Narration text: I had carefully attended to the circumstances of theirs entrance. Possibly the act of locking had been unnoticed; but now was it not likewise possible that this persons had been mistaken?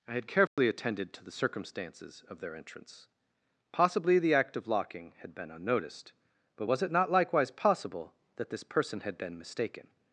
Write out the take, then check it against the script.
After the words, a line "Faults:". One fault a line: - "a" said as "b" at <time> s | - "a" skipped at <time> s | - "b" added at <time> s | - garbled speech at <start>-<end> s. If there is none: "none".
I had carefully attended to the circumstances of their entrance. Possibly the act of locking had been unnoticed; but was it not likewise possible that this person had been mistaken?
Faults:
- "theirs" said as "their" at 2.4 s
- "now" skipped at 6.7 s
- "persons" said as "person" at 8.6 s